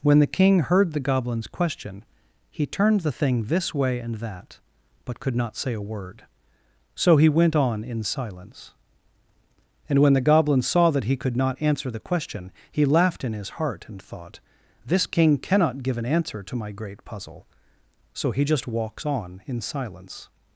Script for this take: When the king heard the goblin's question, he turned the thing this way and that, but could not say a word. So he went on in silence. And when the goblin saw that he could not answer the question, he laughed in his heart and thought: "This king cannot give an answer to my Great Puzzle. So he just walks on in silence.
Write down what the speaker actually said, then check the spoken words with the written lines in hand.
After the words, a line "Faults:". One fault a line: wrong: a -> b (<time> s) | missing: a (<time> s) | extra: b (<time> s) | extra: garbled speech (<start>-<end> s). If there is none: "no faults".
When the king heard the goblin's question, he turned the thing this way and that, but could not say a word. So he went on in silence. And when the goblin saw that he could not answer the question, he laughed in his heart and thought: "This king cannot give an answer to my Great Puzzle. So he just walks on in silence.
Faults:
no faults